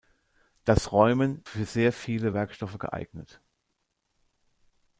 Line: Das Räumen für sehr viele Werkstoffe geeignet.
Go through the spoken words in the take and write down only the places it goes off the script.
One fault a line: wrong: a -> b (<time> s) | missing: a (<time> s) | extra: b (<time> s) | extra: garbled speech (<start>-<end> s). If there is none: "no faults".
no faults